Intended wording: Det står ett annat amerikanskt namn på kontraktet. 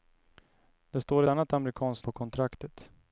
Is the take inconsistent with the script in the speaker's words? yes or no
yes